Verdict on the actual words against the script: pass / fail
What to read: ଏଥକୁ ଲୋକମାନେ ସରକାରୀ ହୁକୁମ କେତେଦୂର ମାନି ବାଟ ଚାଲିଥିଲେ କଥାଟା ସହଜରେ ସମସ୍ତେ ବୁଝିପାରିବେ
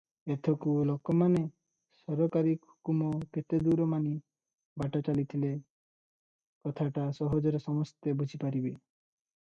pass